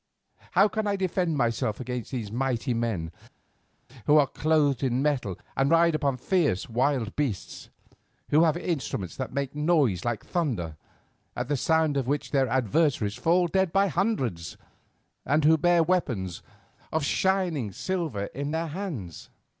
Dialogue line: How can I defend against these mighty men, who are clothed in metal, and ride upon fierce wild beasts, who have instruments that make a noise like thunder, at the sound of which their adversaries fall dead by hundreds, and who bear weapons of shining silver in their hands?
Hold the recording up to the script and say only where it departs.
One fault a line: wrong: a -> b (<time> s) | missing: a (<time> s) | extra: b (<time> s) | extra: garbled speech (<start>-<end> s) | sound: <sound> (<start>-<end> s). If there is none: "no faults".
extra: myself (1.4 s)